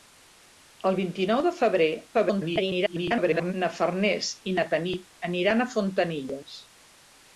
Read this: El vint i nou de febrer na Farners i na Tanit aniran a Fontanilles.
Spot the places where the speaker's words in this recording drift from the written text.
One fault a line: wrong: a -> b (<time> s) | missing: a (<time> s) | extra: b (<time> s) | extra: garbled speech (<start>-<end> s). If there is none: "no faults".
extra: garbled speech (2.1-3.5 s)